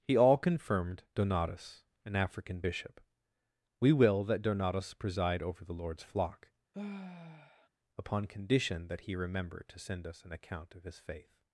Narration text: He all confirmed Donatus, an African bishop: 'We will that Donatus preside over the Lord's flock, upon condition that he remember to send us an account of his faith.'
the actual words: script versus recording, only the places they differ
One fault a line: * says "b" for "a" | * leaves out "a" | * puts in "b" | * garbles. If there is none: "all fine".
all fine